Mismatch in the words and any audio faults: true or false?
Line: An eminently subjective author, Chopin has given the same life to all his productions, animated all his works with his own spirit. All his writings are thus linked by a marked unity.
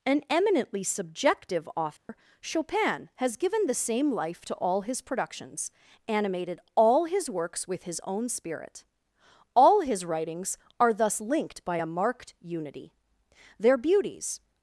true